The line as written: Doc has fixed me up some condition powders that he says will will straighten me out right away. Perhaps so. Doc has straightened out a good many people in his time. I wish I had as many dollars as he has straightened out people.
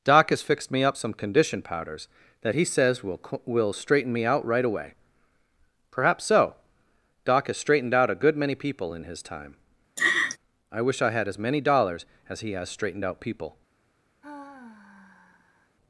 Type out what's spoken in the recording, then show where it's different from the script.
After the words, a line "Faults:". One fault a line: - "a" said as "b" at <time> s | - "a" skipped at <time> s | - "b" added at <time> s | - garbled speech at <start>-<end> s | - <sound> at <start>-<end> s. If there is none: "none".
Doc has fixed me up some condition powders that he says will will straighten me out right away. Perhaps so. Doc has straightened out a good many people in his time. I wish I had as many dollars as he has straightened out people.
Faults:
- laugh at 10.0-10.4 s
- sigh at 14.2-15.8 s